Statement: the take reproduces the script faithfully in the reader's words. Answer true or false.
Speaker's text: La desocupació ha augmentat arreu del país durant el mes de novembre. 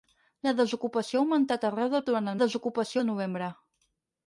false